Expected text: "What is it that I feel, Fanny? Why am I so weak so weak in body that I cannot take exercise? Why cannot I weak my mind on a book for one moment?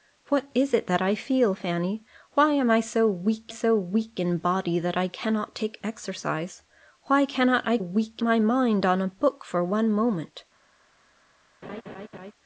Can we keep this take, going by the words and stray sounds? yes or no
no